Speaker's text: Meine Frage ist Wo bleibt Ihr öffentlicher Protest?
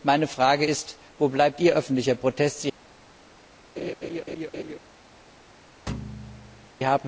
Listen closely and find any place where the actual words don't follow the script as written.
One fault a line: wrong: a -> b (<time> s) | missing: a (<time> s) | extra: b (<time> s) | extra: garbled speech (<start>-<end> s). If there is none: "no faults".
no faults